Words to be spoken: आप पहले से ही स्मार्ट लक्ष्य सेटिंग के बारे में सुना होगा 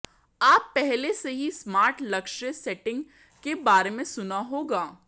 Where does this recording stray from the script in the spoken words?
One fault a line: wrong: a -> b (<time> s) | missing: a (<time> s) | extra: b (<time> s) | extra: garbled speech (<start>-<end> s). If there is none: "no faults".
no faults